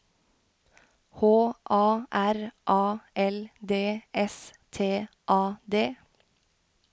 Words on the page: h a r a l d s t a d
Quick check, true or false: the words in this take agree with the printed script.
true